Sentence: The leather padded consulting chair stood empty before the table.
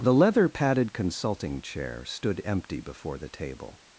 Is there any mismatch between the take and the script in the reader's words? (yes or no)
no